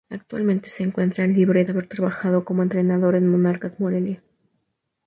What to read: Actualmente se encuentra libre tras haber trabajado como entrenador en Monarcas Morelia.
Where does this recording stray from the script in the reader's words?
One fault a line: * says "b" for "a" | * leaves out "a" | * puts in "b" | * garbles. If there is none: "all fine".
* leaves out "tras"